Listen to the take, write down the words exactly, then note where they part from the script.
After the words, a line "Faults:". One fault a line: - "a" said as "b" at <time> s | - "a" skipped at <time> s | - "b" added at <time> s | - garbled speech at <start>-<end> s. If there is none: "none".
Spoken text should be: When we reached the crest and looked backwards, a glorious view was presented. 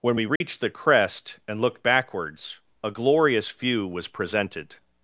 When we reached the crest and looked backwards, a glorious view was presented.
Faults:
none